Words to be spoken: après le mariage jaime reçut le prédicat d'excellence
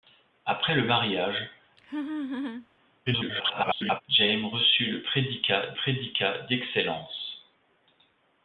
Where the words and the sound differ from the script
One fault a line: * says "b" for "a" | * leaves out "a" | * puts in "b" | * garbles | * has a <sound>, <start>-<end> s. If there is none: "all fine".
* has a laugh, 1.8-2.7 s
* garbles
* puts in "prédicat"